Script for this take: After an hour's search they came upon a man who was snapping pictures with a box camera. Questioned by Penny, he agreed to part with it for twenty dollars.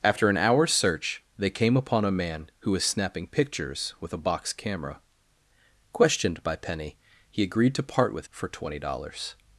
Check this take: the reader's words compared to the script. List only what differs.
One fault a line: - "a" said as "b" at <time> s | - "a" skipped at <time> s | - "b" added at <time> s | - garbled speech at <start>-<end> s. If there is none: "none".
- "it" skipped at 8.3 s